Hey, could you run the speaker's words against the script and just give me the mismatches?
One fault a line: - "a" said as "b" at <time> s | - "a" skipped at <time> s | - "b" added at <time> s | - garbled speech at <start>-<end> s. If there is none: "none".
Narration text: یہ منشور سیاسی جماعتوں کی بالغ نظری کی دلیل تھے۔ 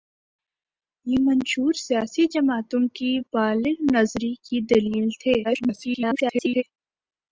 - garbled speech at 5.4-6.6 s